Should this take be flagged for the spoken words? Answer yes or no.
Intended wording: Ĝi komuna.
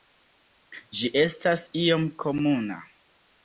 yes